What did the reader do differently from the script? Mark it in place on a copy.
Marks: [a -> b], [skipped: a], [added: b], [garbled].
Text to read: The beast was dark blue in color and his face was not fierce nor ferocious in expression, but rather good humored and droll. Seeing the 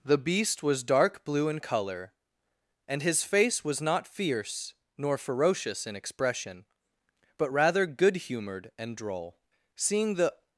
The beast was dark blue in color and his face was not fierce nor ferocious in expression, but rather good humored and droll. Seeing the